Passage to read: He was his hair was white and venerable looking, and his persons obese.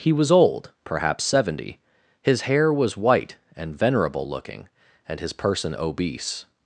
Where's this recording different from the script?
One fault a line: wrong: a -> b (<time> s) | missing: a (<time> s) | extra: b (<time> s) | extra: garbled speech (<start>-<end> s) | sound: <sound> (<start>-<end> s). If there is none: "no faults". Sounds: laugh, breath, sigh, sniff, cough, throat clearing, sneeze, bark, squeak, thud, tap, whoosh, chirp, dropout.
extra: old perhaps seventy (0.3 s)
wrong: persons -> person (5.3 s)